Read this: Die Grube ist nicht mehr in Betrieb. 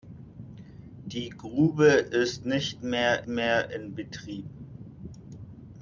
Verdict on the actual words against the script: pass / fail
fail